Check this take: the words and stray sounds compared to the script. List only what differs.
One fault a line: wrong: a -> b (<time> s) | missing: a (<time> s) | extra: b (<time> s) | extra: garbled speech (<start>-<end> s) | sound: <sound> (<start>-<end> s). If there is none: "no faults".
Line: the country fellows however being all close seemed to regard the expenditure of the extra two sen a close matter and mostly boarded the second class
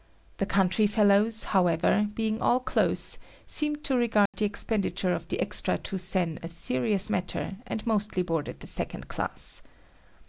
sound: dropout (4.3-4.3 s)
wrong: close -> serious (6.5 s)